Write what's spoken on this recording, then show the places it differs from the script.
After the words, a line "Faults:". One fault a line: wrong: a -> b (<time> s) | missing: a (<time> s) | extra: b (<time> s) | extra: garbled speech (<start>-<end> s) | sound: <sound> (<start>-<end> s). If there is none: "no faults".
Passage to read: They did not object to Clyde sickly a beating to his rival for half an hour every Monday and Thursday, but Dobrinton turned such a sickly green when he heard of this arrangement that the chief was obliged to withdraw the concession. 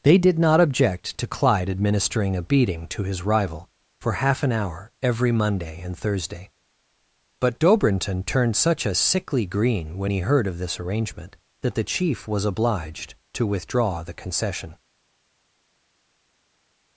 They did not object to Clyde administering a beating to his rival for half an hour every Monday and Thursday, but Dobrinton turned such a sickly green when he heard of this arrangement that the chief was obliged to withdraw the concession.
Faults:
wrong: sickly -> administering (1.7 s)